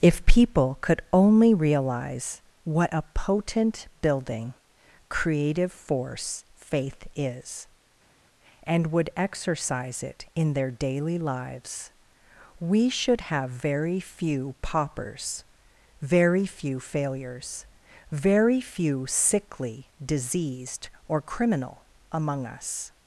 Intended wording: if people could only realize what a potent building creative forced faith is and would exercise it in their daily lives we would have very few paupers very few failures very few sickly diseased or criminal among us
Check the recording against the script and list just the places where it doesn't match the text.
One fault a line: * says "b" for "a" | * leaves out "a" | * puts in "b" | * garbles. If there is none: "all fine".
* says "force" for "forced"
* says "should" for "would"